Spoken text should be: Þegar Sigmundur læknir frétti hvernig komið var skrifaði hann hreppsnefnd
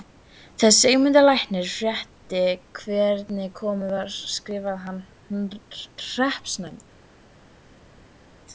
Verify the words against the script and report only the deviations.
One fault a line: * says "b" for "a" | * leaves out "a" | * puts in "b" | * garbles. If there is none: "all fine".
all fine